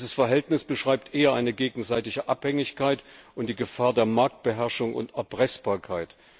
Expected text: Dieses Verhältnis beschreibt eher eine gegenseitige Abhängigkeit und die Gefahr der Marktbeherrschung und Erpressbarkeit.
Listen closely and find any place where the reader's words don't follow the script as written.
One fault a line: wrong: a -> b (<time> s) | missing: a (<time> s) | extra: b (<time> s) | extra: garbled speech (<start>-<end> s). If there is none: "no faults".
no faults